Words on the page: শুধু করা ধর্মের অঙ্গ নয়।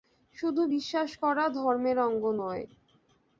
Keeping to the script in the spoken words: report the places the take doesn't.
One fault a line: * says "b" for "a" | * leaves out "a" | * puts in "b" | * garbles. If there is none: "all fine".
* puts in "বিশ্বাস"